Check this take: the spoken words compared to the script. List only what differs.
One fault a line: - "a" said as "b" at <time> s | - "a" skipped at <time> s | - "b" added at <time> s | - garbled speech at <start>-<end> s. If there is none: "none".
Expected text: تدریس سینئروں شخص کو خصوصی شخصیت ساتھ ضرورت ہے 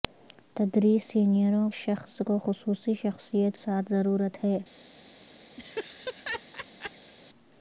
none